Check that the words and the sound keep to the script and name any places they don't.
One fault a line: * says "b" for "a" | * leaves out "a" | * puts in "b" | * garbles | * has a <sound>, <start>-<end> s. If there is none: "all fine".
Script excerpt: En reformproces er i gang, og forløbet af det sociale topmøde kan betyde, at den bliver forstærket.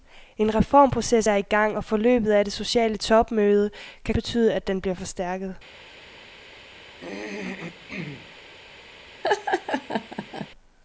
* has a throat clearing, 6.9-8.4 s
* has a laugh, 9.2-10.5 s